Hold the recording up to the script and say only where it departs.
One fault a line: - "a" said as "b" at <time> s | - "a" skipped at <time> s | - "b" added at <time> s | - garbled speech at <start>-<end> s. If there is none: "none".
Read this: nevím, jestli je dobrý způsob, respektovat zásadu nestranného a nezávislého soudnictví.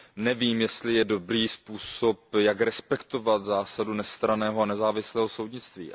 - "jak" added at 2.4 s